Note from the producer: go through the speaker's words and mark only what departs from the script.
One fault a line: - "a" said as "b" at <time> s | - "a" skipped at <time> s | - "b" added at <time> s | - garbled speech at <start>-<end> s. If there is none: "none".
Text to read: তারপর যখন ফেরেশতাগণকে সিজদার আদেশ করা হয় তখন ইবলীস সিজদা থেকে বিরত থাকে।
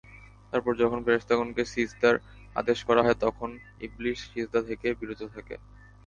none